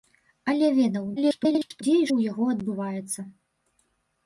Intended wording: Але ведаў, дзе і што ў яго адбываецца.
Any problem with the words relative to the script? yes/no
yes